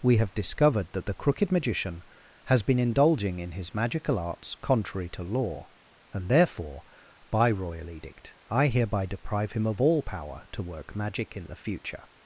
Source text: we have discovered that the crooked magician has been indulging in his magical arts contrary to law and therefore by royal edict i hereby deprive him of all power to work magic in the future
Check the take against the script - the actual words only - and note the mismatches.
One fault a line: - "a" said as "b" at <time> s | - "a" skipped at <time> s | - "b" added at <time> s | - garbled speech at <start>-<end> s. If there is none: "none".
none